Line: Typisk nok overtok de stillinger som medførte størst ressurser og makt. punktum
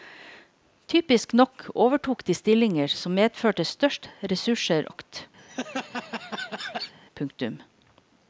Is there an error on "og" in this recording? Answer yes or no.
yes